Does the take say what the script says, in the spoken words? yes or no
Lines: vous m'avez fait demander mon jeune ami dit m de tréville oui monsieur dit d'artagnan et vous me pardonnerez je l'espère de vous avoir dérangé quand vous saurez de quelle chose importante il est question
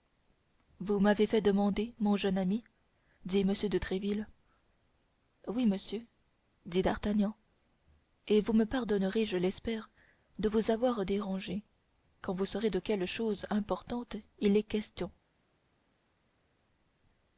yes